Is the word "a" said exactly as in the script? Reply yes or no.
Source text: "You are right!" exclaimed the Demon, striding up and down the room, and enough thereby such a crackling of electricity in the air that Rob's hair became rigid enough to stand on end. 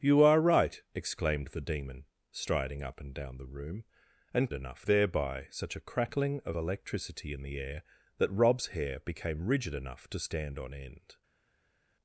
yes